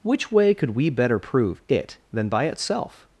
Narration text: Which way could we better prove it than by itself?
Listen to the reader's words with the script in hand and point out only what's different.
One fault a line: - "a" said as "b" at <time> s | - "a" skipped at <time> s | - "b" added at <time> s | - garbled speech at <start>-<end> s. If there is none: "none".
none